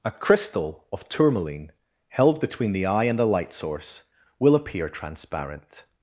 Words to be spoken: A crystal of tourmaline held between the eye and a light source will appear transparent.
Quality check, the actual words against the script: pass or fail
fail